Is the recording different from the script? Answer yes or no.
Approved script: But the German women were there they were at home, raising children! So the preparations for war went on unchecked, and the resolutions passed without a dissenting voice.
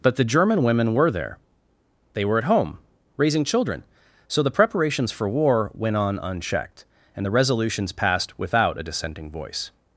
no